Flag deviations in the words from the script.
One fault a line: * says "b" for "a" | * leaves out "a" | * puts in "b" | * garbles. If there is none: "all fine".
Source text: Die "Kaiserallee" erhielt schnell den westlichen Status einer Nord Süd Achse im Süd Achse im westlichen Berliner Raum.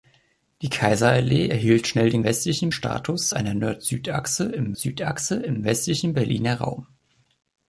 all fine